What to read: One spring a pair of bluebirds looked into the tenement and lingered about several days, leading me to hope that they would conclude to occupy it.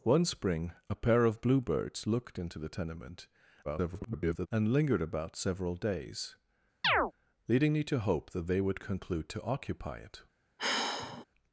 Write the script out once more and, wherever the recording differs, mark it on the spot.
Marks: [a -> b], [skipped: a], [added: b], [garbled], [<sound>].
One spring a pair of bluebirds looked into the tenement [garbled] and lingered about several days, [chirp] leading me to hope that they would conclude to occupy it. [sigh]